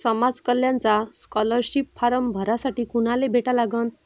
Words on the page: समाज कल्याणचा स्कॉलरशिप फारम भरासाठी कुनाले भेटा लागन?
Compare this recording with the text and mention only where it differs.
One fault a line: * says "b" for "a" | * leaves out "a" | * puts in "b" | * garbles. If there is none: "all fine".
all fine